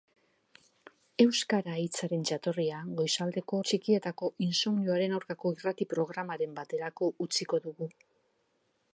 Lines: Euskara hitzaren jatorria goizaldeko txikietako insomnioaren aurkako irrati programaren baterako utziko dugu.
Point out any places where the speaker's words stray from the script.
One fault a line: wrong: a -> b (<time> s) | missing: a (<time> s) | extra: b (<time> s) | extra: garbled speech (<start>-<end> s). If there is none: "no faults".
no faults